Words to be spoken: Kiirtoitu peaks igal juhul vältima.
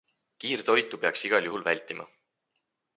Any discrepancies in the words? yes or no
no